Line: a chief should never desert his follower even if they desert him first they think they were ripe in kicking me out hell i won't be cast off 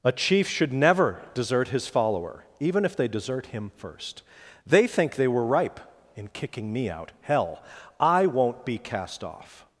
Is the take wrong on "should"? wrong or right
right